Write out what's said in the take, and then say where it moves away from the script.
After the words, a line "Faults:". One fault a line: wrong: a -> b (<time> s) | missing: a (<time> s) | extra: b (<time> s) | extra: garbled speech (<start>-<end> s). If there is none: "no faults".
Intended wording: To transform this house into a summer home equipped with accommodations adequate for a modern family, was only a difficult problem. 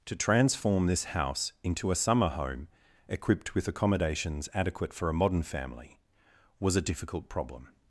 To transform this house into a summer home equipped with accommodations adequate for a modern family, was a difficult problem.
Faults:
missing: only (6.8 s)